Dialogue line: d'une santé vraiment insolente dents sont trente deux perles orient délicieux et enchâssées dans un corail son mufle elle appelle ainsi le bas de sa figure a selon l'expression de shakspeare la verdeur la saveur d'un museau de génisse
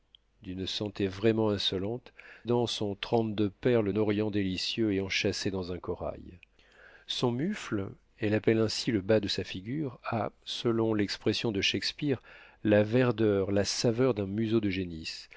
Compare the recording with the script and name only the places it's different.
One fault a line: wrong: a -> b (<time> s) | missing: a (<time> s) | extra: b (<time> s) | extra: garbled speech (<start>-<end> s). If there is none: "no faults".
no faults